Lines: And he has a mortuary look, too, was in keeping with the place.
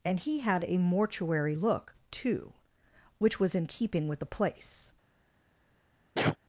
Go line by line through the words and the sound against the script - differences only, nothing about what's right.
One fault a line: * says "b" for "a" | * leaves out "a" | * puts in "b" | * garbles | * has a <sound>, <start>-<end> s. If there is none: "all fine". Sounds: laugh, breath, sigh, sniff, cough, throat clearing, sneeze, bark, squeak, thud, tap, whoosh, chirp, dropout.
* says "had" for "has"
* puts in "which"
* has a sneeze, 6.1-6.4 s